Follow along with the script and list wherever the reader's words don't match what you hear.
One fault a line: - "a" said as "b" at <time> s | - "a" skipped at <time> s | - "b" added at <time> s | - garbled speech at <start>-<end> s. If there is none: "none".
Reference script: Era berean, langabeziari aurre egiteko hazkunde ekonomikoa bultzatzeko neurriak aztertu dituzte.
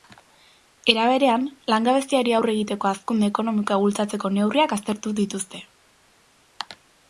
none